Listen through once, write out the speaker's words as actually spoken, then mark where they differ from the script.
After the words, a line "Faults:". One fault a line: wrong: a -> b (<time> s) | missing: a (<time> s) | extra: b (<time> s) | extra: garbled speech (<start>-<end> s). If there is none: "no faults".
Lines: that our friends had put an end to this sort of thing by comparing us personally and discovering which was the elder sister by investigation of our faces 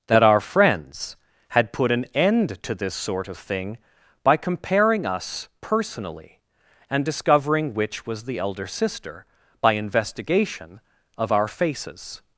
that our friends had put an end to this sort of thing by comparing us personally and discovering which was the elder sister by investigation of our faces
Faults:
no faults